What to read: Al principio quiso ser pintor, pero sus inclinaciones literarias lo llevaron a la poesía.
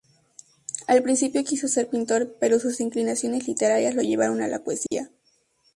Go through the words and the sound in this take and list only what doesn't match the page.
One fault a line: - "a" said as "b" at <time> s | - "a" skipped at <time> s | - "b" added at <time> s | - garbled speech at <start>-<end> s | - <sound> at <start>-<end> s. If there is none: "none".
- dropout at 4.9-4.9 s